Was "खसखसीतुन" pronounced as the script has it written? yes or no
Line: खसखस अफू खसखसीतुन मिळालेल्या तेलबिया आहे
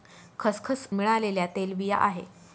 no